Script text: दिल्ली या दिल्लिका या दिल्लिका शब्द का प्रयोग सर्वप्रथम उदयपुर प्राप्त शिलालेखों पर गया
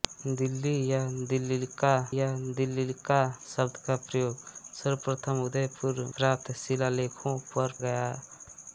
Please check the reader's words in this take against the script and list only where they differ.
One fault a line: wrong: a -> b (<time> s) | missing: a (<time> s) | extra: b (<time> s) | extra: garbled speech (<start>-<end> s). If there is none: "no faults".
no faults